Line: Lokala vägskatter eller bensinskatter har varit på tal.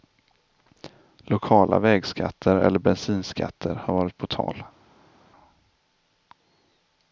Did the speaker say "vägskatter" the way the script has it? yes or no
yes